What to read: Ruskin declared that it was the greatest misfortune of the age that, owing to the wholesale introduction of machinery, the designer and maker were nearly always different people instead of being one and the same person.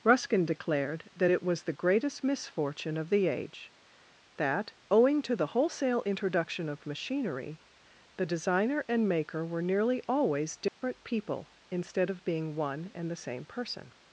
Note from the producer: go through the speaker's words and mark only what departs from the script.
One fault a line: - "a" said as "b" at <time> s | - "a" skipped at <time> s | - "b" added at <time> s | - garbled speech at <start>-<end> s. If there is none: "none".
none